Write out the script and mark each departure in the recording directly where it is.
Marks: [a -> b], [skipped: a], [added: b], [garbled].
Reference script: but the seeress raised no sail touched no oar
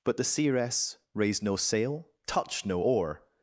but the seeress raised no sail touched no oar